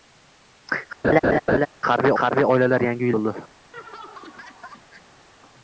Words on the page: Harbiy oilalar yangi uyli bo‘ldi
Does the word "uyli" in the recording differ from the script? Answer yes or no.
yes